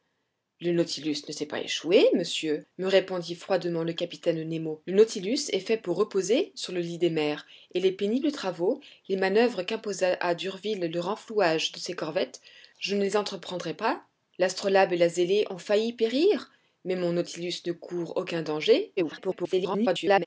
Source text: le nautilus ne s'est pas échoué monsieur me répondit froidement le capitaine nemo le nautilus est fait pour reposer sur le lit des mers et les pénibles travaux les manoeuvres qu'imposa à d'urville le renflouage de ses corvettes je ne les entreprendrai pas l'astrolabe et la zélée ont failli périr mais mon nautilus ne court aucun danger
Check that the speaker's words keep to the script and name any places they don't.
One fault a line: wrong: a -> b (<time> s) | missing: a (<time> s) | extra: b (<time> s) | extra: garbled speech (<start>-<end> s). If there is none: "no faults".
extra: garbled speech (19.0-20.3 s)